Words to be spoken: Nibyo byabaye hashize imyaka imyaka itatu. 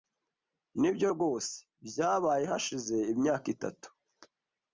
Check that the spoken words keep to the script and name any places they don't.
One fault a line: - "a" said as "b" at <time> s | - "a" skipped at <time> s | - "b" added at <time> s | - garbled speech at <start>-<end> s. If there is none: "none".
- "rwose" added at 1.1 s
- "imyaka" skipped at 3.5 s